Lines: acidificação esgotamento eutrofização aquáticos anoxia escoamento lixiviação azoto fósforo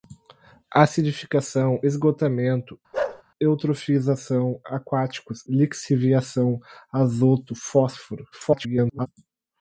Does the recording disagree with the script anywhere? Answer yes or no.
yes